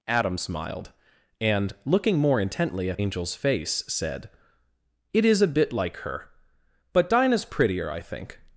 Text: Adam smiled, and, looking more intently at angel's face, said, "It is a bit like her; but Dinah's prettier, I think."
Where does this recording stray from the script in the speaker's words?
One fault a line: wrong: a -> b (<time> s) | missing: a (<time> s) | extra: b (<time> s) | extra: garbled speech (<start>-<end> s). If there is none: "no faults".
no faults